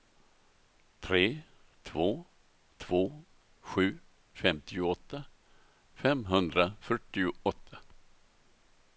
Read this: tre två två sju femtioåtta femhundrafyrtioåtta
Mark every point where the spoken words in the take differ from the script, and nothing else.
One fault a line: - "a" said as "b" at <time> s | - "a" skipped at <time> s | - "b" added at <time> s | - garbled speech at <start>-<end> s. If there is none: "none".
none